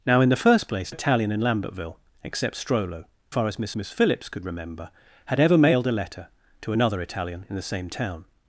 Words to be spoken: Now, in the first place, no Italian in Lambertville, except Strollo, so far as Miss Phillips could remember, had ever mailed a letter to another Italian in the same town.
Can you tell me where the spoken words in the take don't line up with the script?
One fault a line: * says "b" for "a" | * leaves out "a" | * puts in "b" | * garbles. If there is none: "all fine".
* leaves out "no"
* leaves out "so"
* puts in "Miss"